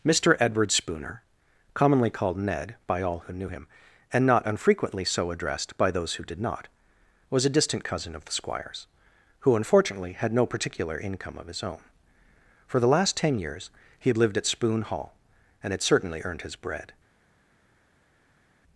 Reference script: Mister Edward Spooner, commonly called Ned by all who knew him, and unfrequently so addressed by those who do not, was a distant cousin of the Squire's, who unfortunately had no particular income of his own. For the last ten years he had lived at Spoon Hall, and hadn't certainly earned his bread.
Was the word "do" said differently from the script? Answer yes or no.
yes